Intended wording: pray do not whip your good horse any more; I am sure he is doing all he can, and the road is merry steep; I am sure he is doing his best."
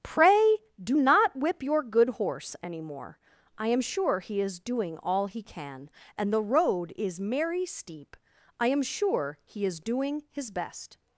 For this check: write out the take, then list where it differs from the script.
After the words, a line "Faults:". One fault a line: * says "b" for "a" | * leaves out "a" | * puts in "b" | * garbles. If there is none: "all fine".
pray do not whip your good horse any more; I am sure he is doing all he can, and the road is merry steep; I am sure he is doing his best."
Faults:
all fine